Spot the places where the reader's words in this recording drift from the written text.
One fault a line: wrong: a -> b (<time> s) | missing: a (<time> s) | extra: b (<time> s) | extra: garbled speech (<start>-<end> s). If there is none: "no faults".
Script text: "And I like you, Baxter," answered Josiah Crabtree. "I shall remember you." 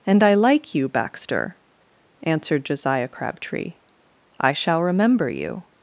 no faults